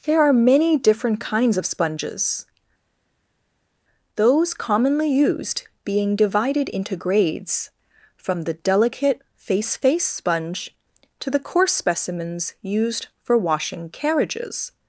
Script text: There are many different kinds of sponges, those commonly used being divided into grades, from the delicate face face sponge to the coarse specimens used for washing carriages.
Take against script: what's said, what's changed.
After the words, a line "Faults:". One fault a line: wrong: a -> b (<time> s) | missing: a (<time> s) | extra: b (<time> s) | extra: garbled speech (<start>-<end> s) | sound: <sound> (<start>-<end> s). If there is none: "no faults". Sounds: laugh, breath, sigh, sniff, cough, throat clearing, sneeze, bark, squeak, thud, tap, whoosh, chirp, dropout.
There are many different kinds of sponges, those commonly used being divided into grades, from the delicate face face sponge to the coarse specimens used for washing carriages.
Faults:
no faults